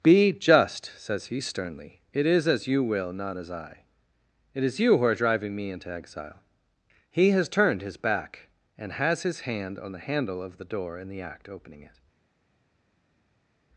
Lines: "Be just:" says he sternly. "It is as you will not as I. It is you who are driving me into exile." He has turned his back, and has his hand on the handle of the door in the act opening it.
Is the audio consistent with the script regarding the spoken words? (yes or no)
yes